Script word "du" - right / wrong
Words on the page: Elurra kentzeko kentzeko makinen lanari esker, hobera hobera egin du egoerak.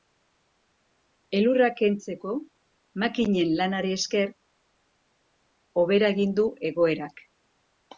right